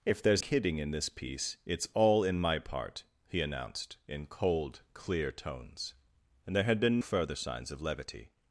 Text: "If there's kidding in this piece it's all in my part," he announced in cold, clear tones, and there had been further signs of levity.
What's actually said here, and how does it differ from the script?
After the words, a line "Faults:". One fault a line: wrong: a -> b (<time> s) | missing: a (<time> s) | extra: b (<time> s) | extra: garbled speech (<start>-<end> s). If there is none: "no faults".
"If there's kidding in this piece it's all in my part," he announced in cold, clear tones, and there had been further signs of levity.
Faults:
no faults